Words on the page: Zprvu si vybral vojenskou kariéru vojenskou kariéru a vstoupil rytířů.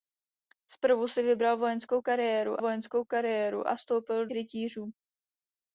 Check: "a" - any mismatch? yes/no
no